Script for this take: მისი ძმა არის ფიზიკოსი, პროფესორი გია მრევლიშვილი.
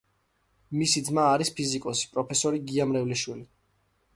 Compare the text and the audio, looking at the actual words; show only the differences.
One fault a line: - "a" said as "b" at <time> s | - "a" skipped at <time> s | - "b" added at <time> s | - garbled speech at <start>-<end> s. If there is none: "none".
none